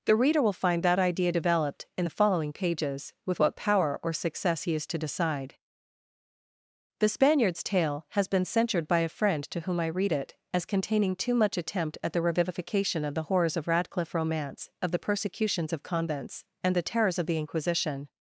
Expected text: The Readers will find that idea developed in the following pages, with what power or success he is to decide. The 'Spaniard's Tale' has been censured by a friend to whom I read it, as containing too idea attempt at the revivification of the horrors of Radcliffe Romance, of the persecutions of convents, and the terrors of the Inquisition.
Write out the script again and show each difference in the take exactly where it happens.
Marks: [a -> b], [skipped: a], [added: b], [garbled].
The [Readers -> Reader] will find that idea developed in the following pages, with what power or success he is to decide. The 'Spaniard's Tale' has been censured by a friend to whom I read it, as containing too [idea -> much] attempt at the revivification of the horrors of Radcliffe Romance, of the persecutions of convents, and the terrors of the Inquisition.